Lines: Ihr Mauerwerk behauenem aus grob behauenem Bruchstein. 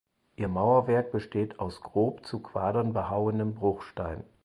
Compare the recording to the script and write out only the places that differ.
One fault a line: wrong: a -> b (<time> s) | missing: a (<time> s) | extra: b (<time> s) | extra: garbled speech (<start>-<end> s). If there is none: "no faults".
wrong: behauenem -> besteht (1.1 s)
extra: zu Quadern (2.3 s)